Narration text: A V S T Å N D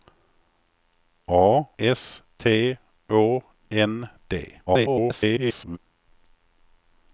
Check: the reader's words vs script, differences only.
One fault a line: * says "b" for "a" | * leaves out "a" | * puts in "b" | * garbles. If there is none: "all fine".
* leaves out "V"
* garbles